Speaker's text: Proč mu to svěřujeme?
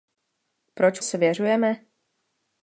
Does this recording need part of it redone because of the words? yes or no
yes